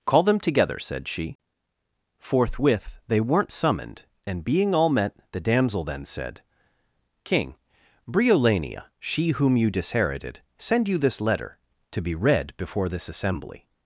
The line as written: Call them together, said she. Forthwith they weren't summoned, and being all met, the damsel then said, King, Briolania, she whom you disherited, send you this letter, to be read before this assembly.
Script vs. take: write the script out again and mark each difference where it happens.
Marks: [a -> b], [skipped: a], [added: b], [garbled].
Call them together, said she. Forthwith they weren't summoned, and being all met, the damsel then said, King, Briolania, she whom you disherited, send you this letter, to be read before this assembly.